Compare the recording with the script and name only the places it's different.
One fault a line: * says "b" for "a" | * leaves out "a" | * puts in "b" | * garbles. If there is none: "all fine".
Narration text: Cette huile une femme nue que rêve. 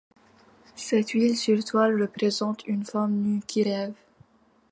* puts in "sur toile représente"
* says "qui" for "que"